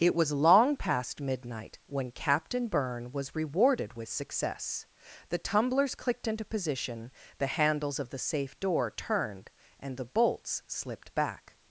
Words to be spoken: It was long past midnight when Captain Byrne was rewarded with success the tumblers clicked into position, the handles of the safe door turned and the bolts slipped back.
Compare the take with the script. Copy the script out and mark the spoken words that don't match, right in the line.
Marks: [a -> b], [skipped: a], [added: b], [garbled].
It was long past midnight when Captain Byrne was rewarded with success the tumblers clicked into position, the handles of the safe door turned and the bolts slipped back.